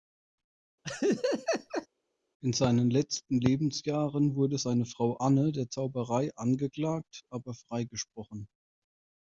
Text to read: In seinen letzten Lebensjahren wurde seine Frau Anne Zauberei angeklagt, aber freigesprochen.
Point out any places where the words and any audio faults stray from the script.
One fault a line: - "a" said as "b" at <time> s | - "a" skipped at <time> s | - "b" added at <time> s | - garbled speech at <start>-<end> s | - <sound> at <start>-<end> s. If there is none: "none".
- laugh at 0.8-1.9 s
- "der" added at 5.5 s